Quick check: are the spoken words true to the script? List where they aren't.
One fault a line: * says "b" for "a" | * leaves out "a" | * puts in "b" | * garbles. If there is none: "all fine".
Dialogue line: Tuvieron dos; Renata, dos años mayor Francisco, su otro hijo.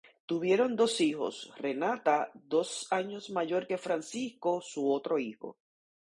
* puts in "hijos"
* puts in "que"